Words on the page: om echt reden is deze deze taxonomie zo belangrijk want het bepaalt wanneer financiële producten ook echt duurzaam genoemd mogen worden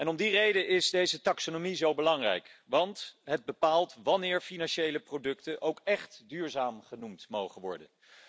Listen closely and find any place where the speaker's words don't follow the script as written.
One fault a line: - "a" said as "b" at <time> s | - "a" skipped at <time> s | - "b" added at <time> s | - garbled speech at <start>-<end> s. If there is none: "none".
- "echt" said as "die" at 0.1 s
- "deze" skipped at 1.2 s